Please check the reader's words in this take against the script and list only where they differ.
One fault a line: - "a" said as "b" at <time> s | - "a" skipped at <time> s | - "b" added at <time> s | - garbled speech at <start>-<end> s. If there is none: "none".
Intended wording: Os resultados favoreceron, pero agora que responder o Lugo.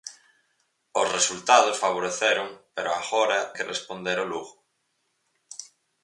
none